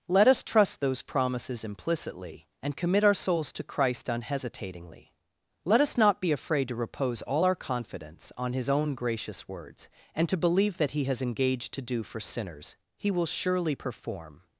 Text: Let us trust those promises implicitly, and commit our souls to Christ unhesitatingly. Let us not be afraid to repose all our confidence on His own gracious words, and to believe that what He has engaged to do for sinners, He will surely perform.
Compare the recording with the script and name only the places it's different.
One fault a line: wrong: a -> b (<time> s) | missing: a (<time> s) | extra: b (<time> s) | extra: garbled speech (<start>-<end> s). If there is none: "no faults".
missing: what (10.9 s)